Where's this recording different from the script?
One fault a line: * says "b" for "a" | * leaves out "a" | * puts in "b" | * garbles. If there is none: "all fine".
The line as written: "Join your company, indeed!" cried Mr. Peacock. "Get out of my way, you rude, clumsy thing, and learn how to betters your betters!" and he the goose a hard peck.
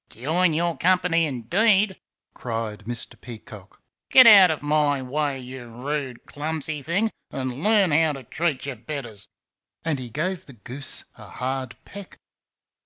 * says "treat" for "betters"
* puts in "gave"